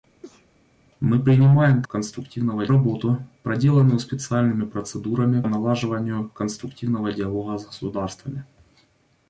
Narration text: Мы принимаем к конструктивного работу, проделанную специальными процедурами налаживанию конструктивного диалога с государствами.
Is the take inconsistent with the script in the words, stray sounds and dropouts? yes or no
yes